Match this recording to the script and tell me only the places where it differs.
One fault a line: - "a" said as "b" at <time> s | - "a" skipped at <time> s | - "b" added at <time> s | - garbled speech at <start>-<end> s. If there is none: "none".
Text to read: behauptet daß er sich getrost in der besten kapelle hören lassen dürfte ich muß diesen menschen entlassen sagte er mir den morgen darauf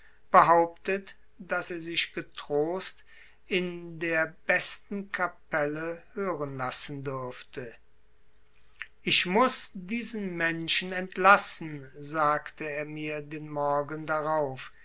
none